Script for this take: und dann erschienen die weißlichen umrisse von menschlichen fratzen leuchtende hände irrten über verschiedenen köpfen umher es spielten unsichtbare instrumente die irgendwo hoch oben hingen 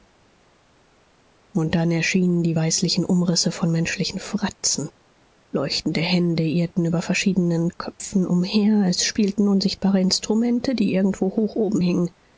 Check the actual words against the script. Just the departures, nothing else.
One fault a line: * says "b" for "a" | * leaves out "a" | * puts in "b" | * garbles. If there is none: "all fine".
all fine